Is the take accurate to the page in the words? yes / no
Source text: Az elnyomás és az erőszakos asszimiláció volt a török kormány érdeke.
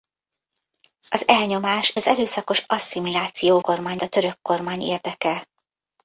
no